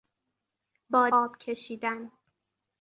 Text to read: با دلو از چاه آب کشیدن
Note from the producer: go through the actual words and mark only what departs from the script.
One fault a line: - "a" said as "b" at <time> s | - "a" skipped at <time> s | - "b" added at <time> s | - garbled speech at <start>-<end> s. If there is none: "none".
- "دلو از چاه" skipped at 1.1 s